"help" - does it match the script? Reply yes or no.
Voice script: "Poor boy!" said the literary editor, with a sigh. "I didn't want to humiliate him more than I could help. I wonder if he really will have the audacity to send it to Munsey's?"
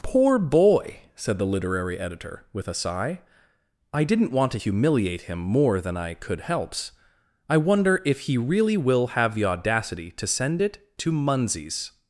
no